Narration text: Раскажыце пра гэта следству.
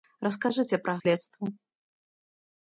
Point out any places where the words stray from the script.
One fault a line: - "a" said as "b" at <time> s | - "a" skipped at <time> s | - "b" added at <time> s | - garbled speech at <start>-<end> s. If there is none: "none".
- "гэта" skipped at 0.9 s